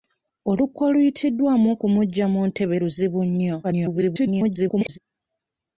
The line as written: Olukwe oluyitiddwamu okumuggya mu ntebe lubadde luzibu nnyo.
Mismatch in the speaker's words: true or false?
true